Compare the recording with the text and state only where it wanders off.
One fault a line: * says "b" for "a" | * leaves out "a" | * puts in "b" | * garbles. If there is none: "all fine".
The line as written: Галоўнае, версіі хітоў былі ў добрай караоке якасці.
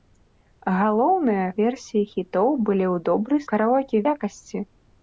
all fine